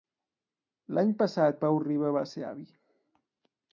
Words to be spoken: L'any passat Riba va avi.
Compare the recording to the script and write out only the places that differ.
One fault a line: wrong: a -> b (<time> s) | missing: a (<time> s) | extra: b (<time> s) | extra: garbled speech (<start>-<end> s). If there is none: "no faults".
extra: Pau (1.6 s)
extra: ser (2.3 s)